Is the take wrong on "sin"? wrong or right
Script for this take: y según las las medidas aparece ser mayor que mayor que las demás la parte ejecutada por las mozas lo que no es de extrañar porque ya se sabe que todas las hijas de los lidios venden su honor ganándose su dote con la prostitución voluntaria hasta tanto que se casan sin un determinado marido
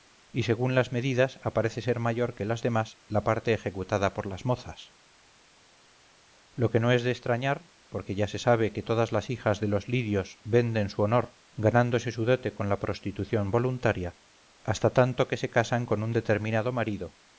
wrong